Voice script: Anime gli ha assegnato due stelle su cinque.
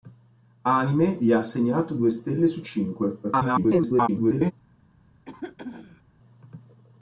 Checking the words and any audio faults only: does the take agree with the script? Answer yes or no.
no